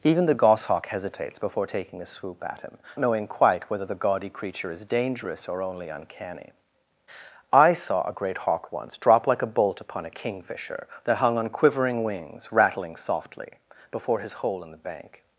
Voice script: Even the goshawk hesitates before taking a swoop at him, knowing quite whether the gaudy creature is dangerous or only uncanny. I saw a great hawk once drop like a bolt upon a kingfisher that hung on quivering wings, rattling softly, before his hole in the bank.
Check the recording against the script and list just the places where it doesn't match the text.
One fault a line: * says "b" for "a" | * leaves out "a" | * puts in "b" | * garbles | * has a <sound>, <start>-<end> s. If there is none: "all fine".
all fine